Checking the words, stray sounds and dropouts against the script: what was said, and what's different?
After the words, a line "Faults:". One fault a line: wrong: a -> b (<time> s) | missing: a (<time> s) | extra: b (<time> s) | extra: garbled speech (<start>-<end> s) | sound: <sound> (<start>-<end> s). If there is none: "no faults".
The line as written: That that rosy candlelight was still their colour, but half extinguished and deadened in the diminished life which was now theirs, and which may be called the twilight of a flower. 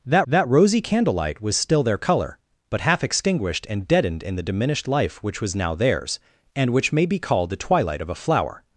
That that rosy candlelight was still their colour, but half extinguished and deadened in the diminished life which was now theirs, and which may be called the twilight of a flower.
Faults:
no faults